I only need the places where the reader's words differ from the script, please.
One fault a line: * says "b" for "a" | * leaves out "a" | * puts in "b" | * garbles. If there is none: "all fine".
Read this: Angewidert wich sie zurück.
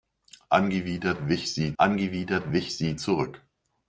* puts in "angewidert wich sie"